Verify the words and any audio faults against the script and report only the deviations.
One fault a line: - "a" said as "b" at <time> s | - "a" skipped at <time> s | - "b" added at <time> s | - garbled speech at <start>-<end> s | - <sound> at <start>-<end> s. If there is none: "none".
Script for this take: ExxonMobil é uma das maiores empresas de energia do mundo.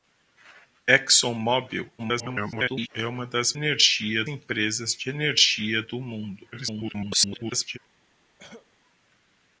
- garbled speech at 2.0-2.9 s
- "maiores" said as "energia" at 3.5 s
- garbled speech at 6.5-7.8 s
- cough at 8.4-8.7 s